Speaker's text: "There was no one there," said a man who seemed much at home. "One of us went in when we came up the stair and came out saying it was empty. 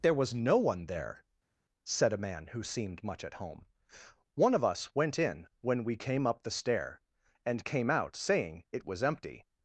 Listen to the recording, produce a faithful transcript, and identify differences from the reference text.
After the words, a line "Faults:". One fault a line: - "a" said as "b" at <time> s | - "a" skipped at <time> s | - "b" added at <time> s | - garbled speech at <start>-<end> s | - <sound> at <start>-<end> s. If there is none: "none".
"There was no one there," said a man who seemed much at home. "One of us went in when we came up the stair and came out saying it was empty.
Faults:
none